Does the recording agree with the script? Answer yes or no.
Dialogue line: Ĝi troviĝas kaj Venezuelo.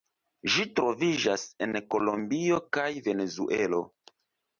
no